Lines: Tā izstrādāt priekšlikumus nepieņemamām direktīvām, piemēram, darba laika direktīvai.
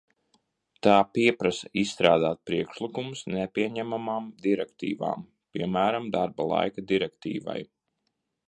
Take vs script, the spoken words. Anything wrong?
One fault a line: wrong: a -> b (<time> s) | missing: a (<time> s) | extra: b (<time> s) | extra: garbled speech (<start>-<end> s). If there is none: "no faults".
extra: pieprasa (1.2 s)